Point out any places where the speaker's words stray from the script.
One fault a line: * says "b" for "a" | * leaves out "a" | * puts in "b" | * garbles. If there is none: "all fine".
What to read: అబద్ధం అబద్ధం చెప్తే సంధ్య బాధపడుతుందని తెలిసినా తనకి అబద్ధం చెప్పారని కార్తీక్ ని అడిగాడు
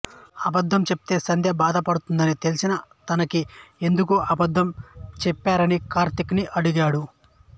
* leaves out "అబద్ధం"
* puts in "ఎందుకు"